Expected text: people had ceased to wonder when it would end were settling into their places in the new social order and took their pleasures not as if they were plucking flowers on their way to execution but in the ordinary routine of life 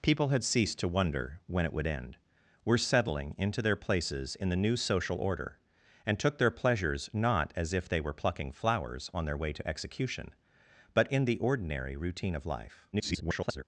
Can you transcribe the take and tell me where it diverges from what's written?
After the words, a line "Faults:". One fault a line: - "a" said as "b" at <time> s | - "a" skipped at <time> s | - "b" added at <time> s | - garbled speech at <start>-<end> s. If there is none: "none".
people had ceased to wonder when it would end were settling into their places in the new social order and took their pleasures not as if they were plucking flowers on their way to execution but in the ordinary routine of life [garbled]
Faults:
- garbled speech at 12.9-13.6 s